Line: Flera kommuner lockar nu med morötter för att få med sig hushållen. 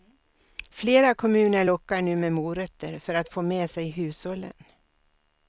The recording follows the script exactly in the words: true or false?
true